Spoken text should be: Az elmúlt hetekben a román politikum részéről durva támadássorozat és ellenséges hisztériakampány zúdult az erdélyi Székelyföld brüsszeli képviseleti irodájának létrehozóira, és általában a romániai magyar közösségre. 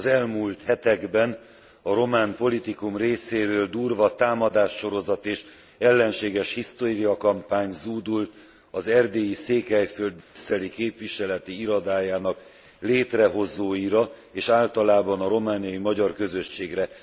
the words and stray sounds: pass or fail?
fail